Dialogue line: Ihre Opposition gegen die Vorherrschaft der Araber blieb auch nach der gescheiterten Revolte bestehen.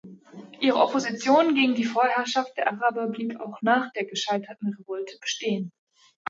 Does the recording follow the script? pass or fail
pass